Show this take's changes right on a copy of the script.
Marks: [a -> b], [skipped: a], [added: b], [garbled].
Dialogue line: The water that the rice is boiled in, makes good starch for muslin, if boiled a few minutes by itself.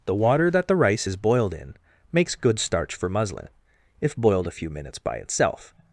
The water that the rice is boiled in, makes good starch for muslin, if boiled a few minutes by itself.